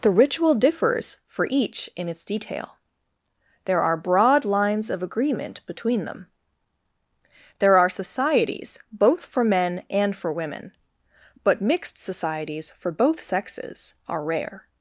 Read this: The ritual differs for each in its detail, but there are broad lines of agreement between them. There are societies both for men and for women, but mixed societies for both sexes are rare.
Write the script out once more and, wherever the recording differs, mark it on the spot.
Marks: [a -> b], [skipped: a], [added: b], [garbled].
The ritual differs for each in its detail, [skipped: but] there are broad lines of agreement between them. There are societies both for men and for women, but mixed societies for both sexes are rare.